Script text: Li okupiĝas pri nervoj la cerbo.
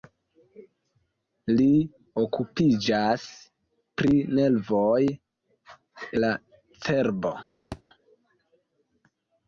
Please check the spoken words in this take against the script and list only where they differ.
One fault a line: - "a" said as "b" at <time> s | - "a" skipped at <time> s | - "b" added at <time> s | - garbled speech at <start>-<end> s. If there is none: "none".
none